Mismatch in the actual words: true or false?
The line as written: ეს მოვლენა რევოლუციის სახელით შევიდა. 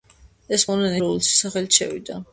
false